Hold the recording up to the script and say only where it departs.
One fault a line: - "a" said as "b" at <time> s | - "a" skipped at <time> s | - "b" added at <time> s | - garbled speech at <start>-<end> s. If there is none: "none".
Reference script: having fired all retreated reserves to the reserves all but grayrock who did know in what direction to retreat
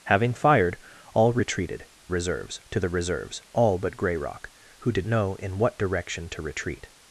none